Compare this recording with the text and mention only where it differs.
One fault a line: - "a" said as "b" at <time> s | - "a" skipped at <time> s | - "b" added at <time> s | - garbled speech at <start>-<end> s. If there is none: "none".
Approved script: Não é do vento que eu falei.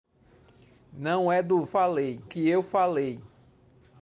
- "vento" said as "falei" at 1.6 s